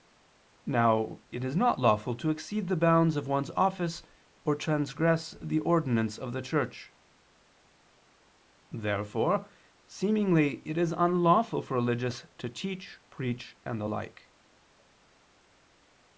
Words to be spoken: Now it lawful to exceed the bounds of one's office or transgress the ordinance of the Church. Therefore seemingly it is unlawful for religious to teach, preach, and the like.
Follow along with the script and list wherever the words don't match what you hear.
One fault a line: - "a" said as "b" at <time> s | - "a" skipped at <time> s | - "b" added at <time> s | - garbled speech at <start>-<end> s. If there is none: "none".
- "is not" added at 1.4 s